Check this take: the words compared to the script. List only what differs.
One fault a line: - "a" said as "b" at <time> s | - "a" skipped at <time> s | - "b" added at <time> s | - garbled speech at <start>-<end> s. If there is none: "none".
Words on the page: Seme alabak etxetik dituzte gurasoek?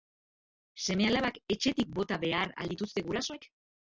- "bota behar al" added at 2.0 s